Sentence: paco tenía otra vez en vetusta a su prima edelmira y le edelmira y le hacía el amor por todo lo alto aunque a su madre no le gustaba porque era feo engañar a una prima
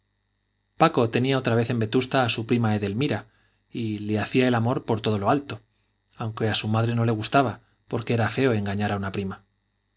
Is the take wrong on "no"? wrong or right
right